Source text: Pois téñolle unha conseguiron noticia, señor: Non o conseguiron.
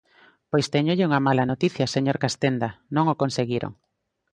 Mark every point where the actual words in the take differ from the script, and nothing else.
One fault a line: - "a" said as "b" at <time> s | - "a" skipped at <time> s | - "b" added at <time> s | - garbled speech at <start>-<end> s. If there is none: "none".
- "conseguiron" said as "mala" at 1.3 s
- "Castenda" added at 2.2 s